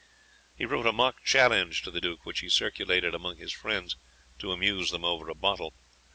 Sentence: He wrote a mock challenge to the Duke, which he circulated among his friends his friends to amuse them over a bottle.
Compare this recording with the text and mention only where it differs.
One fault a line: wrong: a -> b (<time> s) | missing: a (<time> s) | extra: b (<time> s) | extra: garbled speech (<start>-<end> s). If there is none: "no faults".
missing: his friends (4.0 s)